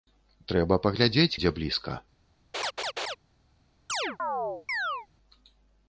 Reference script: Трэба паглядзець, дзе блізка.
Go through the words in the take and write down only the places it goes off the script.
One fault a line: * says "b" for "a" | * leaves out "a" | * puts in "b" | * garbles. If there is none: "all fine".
all fine